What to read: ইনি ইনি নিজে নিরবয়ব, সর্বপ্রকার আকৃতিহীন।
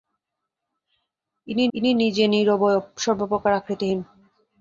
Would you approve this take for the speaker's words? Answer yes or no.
yes